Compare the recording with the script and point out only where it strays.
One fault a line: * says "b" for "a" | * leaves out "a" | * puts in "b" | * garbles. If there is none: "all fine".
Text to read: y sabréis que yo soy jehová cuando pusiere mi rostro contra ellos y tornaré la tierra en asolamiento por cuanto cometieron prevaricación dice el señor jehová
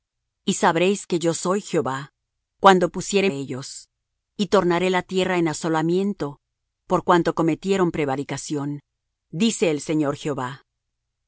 * leaves out "mi rostro contra"